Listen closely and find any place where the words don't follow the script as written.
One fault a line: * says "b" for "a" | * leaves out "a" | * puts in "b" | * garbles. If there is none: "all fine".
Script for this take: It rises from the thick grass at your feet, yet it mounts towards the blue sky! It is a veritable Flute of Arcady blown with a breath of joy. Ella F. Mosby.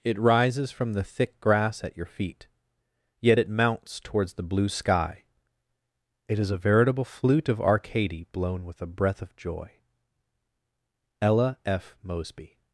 all fine